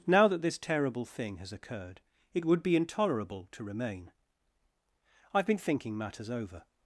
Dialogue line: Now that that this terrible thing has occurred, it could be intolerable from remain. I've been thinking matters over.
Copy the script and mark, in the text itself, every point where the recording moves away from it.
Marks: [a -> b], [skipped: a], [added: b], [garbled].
Now that [skipped: that] this terrible thing has occurred, it [could -> would] be intolerable [from -> to] remain. I've been thinking matters over.